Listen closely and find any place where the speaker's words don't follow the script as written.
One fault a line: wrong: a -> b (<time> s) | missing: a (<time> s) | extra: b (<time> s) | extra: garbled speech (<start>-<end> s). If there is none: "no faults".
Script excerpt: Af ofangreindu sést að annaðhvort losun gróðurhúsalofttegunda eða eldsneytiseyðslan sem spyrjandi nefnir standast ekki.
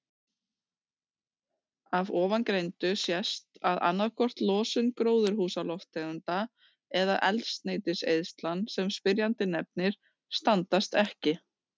no faults